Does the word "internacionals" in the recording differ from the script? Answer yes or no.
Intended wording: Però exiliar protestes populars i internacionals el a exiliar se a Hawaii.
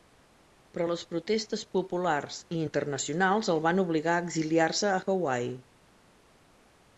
no